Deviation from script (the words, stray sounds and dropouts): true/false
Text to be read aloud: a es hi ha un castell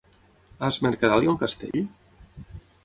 true